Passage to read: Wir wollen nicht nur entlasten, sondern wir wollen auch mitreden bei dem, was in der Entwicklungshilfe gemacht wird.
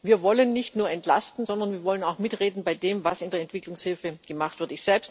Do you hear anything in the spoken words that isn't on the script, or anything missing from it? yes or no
no